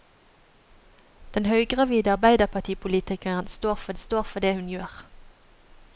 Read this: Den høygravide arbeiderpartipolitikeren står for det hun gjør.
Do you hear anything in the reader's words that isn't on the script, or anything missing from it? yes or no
yes